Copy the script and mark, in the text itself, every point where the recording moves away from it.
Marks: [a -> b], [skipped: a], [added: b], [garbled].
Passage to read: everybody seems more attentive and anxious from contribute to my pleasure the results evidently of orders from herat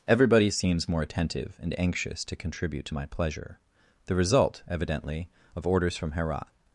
everybody seems more attentive and anxious [from -> to] contribute to my pleasure the [results -> result] evidently of orders from herat